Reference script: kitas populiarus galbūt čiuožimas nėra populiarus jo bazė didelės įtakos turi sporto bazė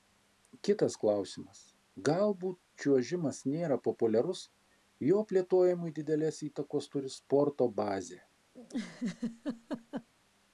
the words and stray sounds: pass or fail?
fail